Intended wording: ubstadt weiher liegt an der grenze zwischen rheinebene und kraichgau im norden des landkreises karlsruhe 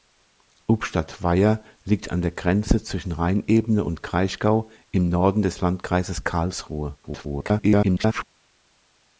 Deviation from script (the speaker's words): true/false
true